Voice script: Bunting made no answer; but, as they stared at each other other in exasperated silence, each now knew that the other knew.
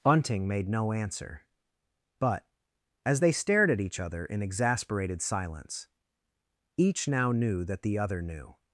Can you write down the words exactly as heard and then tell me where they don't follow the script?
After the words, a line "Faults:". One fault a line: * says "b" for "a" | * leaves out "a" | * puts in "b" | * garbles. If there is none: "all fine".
Bunting made no answer; but, as they stared at each other in exasperated silence, each now knew that the other knew.
Faults:
* leaves out "other"